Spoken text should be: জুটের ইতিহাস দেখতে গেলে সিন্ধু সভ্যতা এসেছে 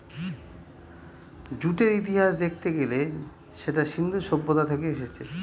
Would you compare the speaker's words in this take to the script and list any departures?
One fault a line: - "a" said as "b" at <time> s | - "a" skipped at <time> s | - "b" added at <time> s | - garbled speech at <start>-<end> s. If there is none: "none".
- "সেটা" added at 3.5 s
- "থেকে" added at 4.7 s